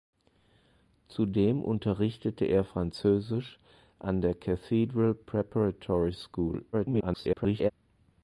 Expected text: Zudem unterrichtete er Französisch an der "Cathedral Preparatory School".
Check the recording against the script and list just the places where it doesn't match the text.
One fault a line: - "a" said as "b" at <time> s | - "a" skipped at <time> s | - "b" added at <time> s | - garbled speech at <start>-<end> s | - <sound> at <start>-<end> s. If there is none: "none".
- garbled speech at 6.7-7.7 s